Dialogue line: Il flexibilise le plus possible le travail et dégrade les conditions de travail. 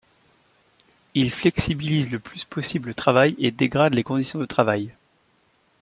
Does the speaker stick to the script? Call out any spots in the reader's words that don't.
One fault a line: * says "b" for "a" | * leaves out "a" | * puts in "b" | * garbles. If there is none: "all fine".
all fine